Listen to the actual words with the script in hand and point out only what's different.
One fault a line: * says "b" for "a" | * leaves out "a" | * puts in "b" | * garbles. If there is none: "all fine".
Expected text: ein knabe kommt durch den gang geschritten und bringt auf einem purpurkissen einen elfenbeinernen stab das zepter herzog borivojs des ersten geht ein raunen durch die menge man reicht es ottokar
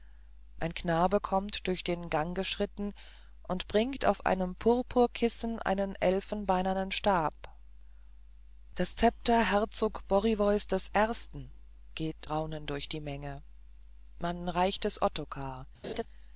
* leaves out "ein"